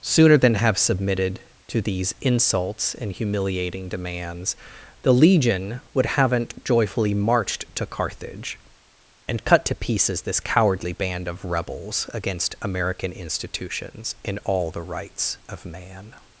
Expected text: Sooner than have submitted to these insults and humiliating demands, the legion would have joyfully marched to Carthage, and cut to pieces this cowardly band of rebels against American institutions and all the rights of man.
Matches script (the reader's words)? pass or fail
fail